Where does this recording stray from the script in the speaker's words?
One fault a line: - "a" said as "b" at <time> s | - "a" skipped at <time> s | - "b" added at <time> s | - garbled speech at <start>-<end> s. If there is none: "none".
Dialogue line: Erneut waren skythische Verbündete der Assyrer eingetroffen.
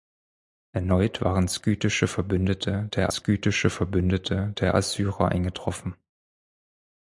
- "skythische Verbündete der" added at 3.1 s